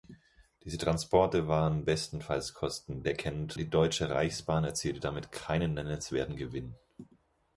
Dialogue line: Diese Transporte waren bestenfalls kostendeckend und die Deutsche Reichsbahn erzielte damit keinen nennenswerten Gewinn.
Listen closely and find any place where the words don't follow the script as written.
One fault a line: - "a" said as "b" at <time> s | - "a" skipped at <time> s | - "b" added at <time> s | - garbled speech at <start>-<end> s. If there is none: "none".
- "und" skipped at 3.6 s